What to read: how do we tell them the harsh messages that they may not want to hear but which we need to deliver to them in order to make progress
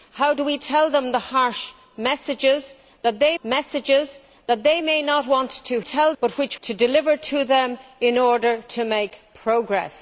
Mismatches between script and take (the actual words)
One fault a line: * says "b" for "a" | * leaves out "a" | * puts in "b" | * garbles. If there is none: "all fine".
* puts in "messages that they"
* says "tell" for "hear"
* leaves out "we need"